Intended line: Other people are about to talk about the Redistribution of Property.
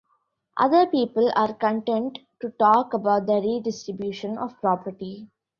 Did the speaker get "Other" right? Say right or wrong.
right